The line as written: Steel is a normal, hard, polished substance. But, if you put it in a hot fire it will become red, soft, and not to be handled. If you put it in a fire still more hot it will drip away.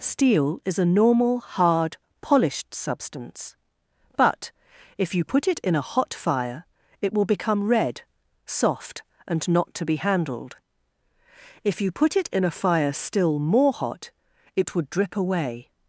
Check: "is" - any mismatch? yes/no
no